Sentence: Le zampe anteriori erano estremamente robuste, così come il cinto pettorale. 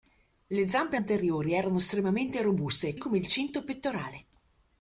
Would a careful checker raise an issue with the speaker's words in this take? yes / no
yes